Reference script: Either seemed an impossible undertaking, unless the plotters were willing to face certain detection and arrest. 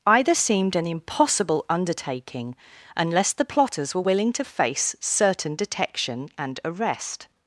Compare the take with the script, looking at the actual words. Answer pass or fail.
pass